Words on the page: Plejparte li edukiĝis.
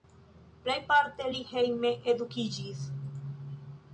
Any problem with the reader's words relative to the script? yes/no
yes